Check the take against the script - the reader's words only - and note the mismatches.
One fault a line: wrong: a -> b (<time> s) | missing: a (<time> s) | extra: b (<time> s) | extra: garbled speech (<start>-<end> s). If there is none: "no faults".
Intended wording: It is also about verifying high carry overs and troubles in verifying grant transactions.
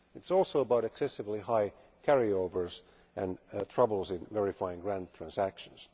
wrong: verifying -> excessively (0.8 s)